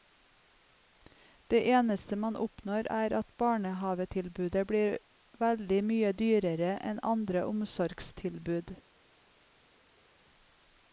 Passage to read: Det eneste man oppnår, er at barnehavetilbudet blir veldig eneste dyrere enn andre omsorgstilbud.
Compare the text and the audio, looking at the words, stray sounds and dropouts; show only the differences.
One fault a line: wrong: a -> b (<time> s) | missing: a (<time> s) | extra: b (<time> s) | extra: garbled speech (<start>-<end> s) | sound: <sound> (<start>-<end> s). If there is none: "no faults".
wrong: eneste -> mye (5.9 s)